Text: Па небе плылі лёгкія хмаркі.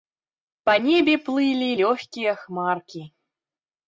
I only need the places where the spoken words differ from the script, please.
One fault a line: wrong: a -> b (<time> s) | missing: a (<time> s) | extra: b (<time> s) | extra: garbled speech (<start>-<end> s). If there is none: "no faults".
no faults